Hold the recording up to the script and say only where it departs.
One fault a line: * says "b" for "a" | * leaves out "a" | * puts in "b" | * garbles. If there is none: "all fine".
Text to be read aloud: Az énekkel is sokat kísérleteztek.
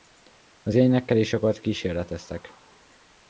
all fine